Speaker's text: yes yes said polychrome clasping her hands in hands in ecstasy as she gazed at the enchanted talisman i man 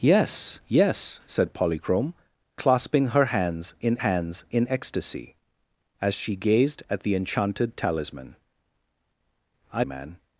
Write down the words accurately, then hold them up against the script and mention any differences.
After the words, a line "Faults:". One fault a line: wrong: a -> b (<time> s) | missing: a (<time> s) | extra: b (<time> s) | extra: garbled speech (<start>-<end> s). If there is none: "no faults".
yes yes said polychrome clasping her hands in hands in ecstasy as she gazed at the enchanted talisman i man
Faults:
no faults